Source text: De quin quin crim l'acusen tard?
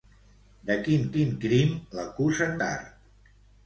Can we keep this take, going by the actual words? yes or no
yes